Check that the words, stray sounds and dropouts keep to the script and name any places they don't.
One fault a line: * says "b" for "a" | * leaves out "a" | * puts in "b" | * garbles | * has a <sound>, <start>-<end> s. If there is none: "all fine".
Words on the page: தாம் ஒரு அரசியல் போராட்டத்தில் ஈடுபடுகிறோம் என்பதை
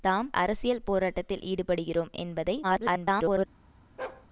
* leaves out "ஒரு"
* garbles
* has a bark, 4.0-4.3 s